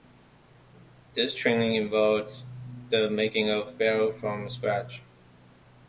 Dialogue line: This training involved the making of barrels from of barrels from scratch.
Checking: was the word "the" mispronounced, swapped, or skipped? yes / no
no